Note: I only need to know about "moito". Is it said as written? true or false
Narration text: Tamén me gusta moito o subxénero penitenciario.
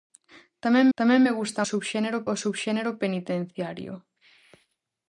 false